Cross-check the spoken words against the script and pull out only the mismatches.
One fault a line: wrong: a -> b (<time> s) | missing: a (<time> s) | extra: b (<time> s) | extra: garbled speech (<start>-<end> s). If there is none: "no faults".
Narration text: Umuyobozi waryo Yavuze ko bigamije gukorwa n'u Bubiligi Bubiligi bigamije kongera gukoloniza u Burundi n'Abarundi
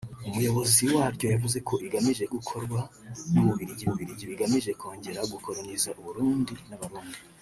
no faults